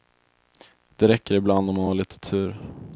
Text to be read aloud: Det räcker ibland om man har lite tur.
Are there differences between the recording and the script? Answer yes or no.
no